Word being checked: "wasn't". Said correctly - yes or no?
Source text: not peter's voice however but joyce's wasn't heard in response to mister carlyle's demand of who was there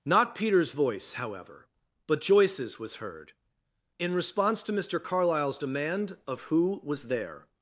no